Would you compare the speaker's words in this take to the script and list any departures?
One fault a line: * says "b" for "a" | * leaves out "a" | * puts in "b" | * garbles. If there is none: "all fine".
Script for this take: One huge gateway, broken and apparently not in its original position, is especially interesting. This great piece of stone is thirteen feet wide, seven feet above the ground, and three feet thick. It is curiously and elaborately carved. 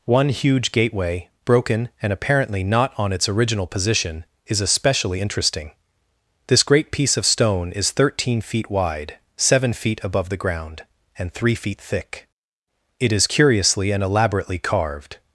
* says "on" for "in"